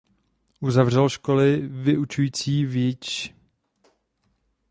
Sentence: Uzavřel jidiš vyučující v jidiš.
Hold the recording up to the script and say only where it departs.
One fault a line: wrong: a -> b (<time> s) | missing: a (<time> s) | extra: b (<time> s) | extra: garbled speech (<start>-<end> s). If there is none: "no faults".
wrong: jidiš -> školy (1.1 s)